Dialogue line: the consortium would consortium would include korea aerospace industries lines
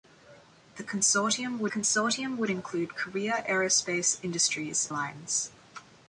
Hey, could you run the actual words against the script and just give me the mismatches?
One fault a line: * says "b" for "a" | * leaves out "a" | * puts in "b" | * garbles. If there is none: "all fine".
all fine